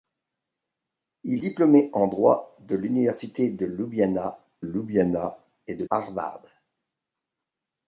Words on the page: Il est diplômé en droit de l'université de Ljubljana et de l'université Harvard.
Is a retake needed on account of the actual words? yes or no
yes